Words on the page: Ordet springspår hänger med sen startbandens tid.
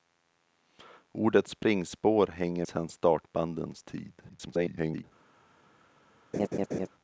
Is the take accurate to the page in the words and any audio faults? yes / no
no